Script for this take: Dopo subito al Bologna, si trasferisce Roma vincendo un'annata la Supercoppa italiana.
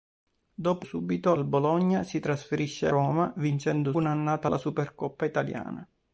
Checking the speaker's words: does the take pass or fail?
pass